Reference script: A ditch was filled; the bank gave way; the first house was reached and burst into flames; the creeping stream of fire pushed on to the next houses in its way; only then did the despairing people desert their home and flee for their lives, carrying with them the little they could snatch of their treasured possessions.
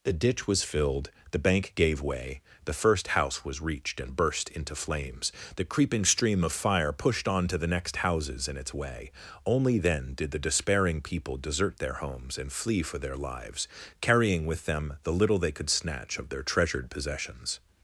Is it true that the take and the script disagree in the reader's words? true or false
true